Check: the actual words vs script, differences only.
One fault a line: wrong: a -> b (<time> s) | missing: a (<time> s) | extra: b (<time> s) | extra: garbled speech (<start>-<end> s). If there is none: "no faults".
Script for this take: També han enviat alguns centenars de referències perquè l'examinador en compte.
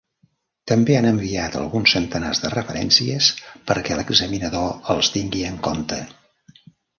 extra: els tingui (5.0 s)